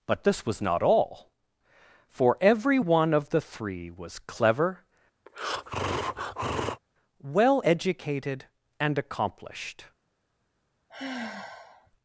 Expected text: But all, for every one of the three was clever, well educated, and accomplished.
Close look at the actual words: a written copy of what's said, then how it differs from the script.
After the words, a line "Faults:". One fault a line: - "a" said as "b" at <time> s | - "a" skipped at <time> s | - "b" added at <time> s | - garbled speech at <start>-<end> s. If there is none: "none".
But this was not all, for every one of the three was clever, well educated, and accomplished.
Faults:
- "this was not" added at 0.2 s